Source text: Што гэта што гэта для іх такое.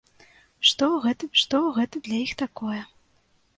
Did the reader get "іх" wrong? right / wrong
right